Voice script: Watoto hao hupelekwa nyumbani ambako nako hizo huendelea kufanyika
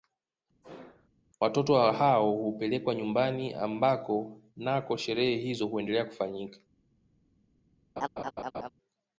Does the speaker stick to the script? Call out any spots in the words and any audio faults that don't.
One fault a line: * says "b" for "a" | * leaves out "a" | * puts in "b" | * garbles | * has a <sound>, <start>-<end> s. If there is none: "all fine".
* has a sneeze, 0.6-1.1 s
* puts in "sherehe"
* has a laugh, 8.0-8.7 s